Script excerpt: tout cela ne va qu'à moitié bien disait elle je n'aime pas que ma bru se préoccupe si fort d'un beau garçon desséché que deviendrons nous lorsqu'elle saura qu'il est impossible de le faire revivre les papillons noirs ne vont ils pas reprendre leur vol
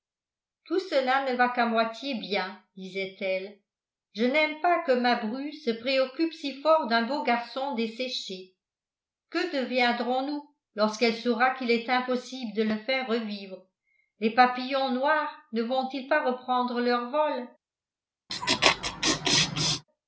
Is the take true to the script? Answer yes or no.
yes